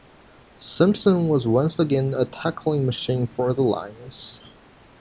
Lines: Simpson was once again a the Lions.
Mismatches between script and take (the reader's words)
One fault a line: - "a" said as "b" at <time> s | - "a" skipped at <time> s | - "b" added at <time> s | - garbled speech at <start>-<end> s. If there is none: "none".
- "tackling machine for" added at 2.2 s